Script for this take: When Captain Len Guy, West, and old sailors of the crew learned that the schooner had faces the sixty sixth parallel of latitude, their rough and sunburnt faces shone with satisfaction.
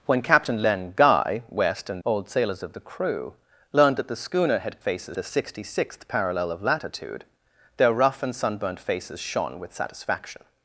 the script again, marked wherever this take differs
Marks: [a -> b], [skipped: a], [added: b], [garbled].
When Captain Len Guy, West, and old sailors of the crew learned that the schooner had faces the sixty sixth parallel of latitude, their rough and sunburnt faces shone with satisfaction.